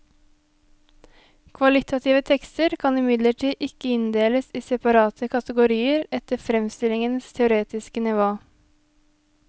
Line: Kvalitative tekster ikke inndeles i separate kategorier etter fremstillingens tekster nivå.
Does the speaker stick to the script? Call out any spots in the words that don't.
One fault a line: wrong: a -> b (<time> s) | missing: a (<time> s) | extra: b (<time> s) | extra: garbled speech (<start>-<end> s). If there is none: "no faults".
extra: kan imidlertid (2.8 s)
wrong: tekster -> teoretiske (7.4 s)